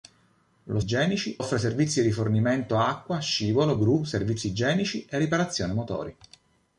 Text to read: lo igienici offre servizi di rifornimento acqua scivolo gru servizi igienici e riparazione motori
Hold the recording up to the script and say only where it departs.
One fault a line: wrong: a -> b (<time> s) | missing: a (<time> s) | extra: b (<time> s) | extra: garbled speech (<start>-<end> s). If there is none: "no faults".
no faults